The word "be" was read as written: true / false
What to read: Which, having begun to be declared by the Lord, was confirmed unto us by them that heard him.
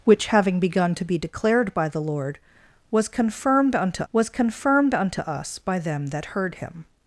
true